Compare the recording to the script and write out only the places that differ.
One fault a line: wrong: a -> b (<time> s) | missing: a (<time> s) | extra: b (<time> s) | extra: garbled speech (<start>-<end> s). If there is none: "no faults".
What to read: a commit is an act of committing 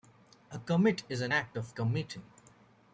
no faults